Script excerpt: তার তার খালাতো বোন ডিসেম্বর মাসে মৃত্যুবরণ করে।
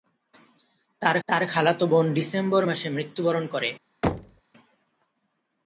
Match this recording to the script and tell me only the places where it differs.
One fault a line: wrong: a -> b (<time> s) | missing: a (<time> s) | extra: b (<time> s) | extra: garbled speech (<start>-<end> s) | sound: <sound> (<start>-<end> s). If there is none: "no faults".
sound: thud (4.0-4.4 s)